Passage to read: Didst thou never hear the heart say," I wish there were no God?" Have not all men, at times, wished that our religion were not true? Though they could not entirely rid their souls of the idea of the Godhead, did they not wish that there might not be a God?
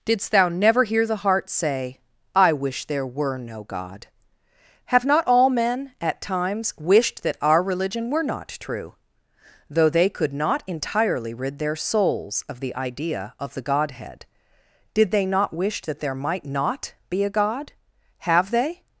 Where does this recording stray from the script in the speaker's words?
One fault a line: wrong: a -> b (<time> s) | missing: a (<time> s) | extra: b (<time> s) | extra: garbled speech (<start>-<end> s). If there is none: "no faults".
extra: Have they (18.2 s)